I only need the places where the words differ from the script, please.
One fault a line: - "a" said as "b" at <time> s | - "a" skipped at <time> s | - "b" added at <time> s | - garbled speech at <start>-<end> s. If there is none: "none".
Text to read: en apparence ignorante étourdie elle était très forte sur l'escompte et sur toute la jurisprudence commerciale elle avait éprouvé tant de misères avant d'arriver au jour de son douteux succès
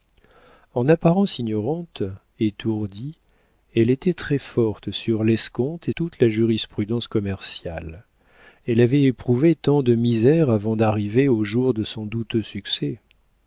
- "sur" skipped at 5.9 s